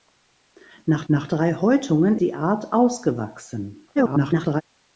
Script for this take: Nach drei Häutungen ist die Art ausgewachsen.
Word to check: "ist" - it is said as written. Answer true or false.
false